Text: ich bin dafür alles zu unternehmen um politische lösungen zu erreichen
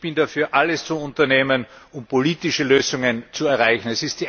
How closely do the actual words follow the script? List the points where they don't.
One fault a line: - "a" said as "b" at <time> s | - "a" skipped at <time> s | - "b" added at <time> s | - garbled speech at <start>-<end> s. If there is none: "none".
none